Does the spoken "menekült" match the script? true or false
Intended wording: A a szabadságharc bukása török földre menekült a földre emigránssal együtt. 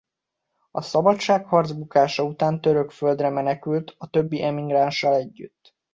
true